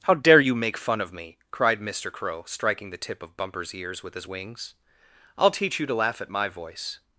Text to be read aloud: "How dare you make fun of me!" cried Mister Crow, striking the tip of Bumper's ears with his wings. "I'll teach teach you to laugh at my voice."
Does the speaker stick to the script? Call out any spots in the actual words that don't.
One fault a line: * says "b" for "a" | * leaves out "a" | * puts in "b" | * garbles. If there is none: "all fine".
* leaves out "teach"